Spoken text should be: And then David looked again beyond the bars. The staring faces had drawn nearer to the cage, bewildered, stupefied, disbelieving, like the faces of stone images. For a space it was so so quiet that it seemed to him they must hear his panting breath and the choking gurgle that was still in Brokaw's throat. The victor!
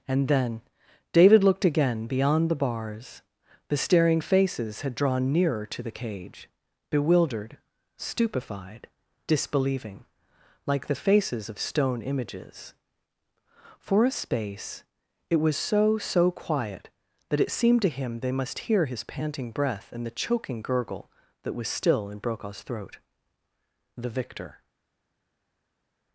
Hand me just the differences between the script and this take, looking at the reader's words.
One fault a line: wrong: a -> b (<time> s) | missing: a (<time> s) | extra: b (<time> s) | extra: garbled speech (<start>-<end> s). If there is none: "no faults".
no faults